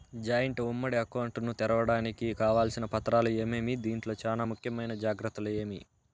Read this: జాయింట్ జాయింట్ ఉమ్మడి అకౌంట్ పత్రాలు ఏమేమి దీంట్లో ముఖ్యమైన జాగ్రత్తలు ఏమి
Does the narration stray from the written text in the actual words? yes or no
yes